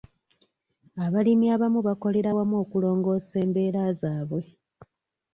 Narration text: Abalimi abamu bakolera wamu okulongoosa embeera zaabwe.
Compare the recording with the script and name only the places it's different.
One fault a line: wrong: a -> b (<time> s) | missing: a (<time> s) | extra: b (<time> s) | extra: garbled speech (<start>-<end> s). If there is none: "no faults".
no faults